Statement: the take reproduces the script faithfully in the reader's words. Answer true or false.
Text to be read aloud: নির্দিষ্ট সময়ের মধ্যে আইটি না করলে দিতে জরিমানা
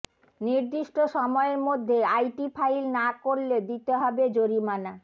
false